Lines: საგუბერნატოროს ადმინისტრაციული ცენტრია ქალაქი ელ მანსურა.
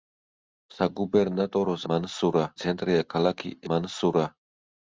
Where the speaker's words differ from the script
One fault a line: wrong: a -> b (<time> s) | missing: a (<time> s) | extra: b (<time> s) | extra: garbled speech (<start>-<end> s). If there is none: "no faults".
wrong: ადმინისტრაციული -> მანსურა (1.9 s)
missing: ელ (3.5 s)